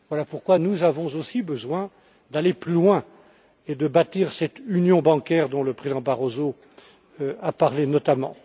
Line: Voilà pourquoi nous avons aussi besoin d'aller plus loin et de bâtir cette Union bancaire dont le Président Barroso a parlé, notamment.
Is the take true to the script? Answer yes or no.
yes